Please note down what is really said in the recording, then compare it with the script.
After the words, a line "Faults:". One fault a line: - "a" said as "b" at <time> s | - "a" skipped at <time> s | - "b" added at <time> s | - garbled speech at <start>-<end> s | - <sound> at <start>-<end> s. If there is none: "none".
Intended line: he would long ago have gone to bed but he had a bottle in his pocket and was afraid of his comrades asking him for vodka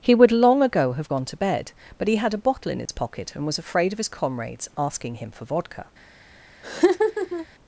he would long ago have gone to bed but he had a bottle in his pocket and was afraid of his comrades asking him for vodka
Faults:
- dropout at 2.9-2.9 s
- laugh at 6.6-7.5 s